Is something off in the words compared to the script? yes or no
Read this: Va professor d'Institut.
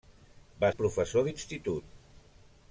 no